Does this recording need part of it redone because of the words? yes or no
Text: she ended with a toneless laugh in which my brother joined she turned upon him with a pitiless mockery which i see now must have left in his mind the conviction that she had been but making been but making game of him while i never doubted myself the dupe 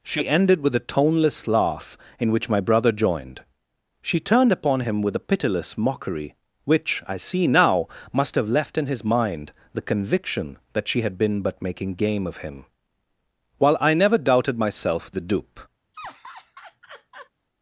yes